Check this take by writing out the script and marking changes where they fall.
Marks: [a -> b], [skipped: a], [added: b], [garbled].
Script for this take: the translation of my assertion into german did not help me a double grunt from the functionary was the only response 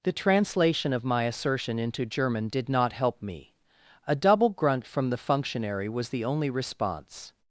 the translation of my assertion into german did not help me a double grunt from the functionary was the only response